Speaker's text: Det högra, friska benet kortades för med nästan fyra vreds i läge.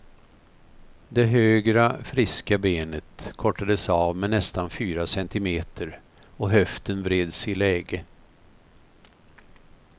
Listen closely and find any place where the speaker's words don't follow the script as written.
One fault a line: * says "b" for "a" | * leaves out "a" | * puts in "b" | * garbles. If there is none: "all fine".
* says "av" for "för"
* puts in "centimeter och höften"